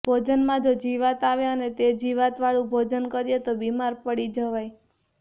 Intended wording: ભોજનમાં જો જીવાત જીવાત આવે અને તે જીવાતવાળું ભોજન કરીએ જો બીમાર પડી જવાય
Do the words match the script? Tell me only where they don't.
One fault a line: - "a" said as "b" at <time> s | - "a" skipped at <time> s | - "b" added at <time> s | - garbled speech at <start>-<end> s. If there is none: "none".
- "જીવાત" skipped at 1.2 s
- "જો" said as "તો" at 3.4 s